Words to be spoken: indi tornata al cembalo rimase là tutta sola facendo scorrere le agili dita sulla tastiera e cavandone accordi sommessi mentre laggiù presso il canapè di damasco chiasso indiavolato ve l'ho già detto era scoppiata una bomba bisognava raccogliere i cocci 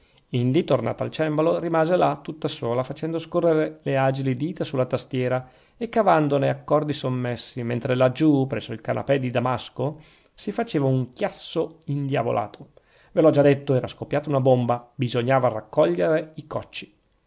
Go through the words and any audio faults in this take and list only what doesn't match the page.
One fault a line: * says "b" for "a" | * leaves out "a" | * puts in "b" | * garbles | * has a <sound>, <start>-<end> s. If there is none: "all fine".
* puts in "si faceva un"